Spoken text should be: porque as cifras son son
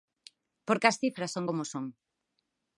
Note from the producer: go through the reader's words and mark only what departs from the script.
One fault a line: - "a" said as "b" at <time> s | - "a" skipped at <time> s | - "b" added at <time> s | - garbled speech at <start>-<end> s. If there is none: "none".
- "como" added at 1.5 s